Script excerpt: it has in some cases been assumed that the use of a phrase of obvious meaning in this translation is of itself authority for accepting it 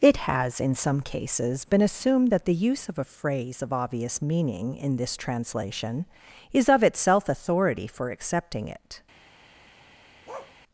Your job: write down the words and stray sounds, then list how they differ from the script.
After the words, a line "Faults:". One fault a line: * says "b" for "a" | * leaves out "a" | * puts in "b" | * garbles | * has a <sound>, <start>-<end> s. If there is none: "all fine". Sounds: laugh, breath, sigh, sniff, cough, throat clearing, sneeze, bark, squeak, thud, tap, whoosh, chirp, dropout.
it has in some cases been assumed that the use of a phrase of obvious meaning in this translation is of itself authority for accepting it
Faults:
* has a bark, 10.3-10.6 s